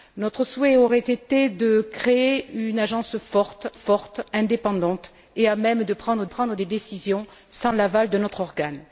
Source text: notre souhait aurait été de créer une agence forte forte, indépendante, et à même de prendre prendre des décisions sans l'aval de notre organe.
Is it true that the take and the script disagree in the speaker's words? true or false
false